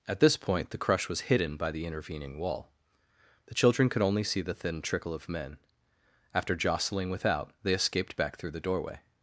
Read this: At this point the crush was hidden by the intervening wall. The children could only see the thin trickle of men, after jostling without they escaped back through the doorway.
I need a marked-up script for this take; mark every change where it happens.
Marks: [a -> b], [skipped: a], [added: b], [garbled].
At this point the crush was hidden by the intervening wall. The children could only see the thin trickle of men, after jostling without they escaped back through the doorway.